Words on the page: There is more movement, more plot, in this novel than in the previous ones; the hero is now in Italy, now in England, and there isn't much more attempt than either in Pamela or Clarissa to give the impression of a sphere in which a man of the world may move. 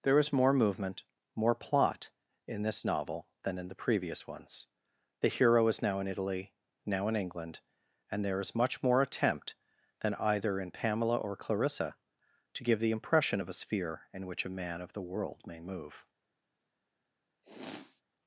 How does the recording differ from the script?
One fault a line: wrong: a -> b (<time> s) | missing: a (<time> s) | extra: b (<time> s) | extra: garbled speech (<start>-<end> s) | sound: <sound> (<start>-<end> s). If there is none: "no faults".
wrong: isn't -> is (8.4 s)
sound: sniff (17.4-18.0 s)